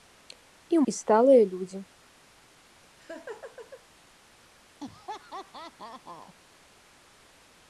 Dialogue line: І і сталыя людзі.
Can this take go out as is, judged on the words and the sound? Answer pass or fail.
fail